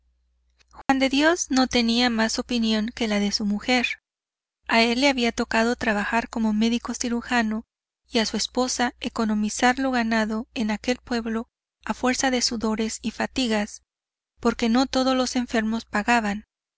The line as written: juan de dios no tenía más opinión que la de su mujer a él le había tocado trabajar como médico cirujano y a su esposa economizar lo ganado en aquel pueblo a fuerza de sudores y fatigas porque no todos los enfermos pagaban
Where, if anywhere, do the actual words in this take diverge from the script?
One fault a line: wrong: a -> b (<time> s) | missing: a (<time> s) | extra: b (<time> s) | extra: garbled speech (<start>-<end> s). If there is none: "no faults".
no faults